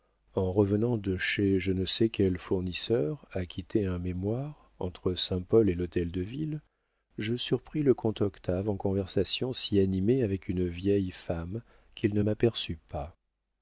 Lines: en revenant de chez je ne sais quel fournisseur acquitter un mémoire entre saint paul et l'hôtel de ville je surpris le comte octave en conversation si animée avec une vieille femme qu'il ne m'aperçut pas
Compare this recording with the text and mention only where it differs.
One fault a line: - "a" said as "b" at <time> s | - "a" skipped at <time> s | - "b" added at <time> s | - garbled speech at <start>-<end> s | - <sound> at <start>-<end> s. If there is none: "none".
none